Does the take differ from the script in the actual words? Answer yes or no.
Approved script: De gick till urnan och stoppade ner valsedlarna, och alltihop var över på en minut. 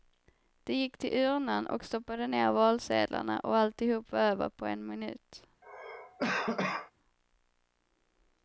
no